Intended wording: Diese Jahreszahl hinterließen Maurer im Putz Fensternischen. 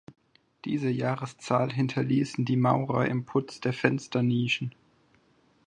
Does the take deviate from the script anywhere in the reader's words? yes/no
yes